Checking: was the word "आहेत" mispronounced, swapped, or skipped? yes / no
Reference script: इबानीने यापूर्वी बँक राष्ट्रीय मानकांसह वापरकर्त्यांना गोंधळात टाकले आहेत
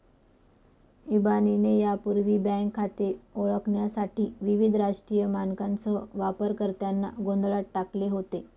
yes